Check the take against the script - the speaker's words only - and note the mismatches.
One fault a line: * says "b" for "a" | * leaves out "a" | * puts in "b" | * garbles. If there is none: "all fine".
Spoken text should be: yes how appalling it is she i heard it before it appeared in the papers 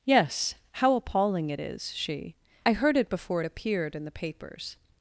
all fine